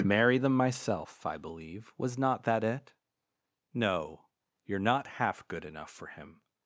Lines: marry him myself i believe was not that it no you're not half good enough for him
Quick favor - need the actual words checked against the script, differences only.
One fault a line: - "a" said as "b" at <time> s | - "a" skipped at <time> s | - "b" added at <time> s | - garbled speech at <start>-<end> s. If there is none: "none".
- "him" said as "them" at 0.4 s